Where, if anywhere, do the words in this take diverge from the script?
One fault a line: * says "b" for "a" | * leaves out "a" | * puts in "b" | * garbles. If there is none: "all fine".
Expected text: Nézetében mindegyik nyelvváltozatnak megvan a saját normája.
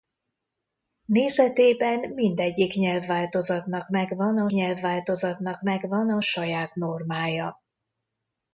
* puts in "nyelvváltozatnak megvan a"